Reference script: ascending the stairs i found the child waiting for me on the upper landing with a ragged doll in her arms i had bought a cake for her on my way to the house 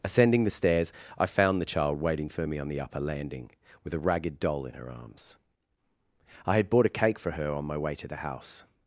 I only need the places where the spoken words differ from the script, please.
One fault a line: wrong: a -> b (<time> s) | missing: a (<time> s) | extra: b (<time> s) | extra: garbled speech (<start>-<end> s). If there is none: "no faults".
no faults